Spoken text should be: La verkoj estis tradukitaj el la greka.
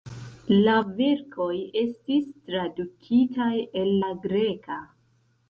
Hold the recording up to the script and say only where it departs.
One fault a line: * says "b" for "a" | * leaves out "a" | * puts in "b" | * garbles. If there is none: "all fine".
all fine